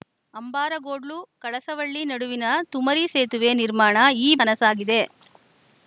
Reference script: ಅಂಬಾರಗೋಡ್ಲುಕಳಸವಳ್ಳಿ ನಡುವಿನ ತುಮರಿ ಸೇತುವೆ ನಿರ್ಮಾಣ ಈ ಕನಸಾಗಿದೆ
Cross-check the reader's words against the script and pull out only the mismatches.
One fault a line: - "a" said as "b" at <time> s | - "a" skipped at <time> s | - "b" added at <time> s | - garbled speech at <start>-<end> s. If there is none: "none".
none